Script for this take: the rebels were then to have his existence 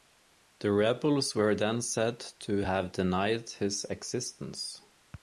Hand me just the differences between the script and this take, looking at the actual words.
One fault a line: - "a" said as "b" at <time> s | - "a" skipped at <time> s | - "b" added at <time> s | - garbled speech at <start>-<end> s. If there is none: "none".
- "said" added at 1.8 s
- "denied" added at 2.9 s